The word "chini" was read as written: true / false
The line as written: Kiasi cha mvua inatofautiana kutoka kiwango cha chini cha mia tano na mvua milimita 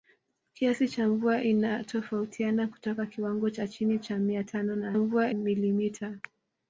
true